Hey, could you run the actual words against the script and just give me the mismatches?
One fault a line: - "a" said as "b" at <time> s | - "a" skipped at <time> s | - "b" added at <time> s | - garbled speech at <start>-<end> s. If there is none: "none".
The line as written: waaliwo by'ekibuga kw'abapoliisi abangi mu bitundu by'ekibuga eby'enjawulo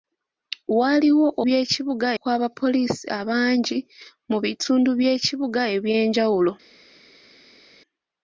none